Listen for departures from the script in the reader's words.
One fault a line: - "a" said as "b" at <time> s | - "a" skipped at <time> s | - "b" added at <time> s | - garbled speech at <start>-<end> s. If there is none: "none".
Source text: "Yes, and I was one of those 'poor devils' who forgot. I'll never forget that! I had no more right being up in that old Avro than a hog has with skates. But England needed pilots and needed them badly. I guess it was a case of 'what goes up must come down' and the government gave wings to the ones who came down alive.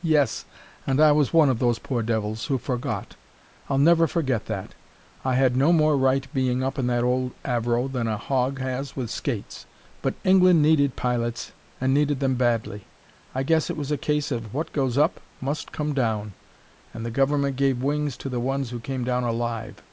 none